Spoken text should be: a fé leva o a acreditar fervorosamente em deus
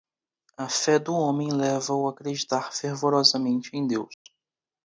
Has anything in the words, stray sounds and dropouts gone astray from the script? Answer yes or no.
yes